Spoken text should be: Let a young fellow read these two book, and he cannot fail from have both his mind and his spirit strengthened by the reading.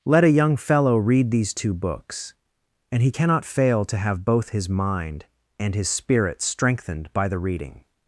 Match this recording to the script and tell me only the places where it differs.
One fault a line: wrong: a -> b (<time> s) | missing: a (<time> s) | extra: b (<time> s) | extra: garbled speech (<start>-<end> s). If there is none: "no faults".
wrong: book -> books (1.8 s)
wrong: from -> to (3.9 s)